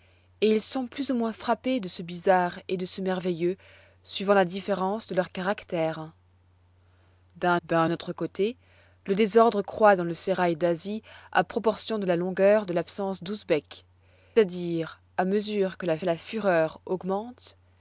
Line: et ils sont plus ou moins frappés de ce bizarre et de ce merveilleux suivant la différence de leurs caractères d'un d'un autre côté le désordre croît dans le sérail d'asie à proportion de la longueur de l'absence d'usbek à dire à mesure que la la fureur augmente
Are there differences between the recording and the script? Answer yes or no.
no